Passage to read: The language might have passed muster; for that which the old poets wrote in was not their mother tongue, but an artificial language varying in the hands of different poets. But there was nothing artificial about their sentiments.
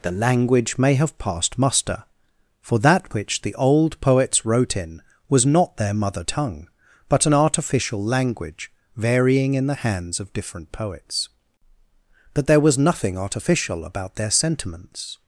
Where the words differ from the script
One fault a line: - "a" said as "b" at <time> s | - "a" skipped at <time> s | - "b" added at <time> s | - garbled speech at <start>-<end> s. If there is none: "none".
- "might" said as "may" at 0.8 s